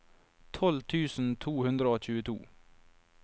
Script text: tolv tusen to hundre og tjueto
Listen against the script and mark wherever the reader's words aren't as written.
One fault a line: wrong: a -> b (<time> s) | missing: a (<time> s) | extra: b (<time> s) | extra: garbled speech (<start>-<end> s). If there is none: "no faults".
no faults